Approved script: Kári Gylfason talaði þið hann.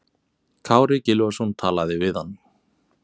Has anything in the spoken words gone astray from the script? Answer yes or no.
yes